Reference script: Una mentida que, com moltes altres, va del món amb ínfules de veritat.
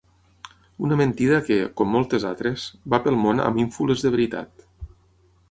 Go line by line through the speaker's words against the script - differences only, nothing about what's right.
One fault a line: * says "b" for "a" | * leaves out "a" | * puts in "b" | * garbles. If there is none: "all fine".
* says "pel" for "del"